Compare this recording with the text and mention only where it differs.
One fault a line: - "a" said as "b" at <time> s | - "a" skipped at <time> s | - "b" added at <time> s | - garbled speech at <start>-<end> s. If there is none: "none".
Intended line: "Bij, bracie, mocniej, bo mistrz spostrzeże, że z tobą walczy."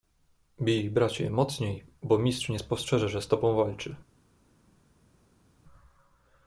- "nie" added at 2.5 s